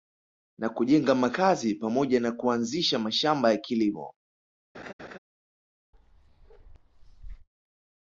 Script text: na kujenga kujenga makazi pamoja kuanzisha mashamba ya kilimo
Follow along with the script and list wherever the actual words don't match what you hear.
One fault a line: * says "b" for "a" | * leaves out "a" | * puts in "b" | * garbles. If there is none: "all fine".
* leaves out "kujenga"
* puts in "na"